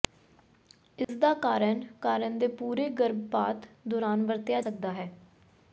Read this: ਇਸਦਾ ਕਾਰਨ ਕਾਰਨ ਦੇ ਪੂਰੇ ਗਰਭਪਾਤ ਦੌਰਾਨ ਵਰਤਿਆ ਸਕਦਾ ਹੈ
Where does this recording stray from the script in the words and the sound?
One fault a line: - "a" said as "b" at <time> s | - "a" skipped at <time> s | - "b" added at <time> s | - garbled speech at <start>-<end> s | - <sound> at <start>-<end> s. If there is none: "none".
- dropout at 1.0-1.1 s